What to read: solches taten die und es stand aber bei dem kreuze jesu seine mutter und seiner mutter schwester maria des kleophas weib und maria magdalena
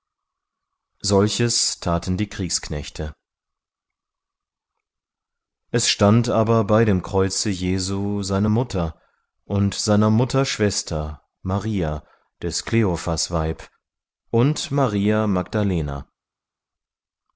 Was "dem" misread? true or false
false